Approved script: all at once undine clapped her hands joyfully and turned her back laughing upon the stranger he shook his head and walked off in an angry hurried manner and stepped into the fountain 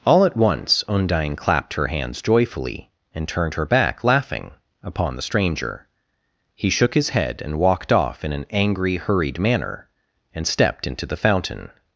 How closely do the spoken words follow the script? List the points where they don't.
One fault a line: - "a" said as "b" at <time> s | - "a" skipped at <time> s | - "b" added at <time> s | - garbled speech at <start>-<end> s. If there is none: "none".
none